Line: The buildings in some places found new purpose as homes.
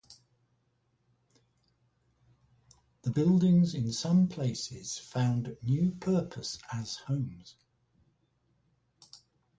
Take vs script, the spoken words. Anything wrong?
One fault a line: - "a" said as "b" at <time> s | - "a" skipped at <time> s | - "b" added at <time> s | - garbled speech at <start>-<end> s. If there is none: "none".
none